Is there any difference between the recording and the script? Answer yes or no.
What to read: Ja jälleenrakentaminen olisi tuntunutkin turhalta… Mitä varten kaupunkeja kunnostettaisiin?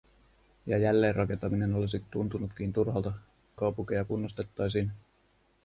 yes